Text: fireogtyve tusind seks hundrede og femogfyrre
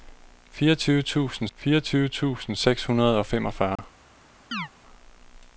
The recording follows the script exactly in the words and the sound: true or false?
false